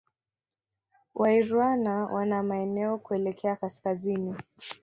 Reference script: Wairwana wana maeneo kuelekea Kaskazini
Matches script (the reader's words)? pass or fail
pass